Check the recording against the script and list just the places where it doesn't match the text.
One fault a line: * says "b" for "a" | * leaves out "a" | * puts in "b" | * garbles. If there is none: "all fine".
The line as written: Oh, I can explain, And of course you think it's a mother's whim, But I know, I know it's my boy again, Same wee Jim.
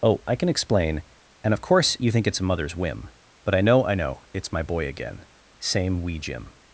all fine